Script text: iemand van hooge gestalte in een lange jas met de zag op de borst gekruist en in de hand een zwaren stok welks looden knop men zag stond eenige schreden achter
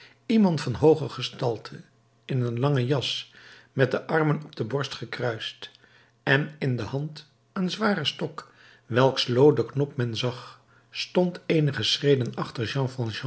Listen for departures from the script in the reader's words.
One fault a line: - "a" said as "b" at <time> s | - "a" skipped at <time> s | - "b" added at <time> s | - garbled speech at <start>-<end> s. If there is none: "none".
- "zag" said as "armen" at 4.1 s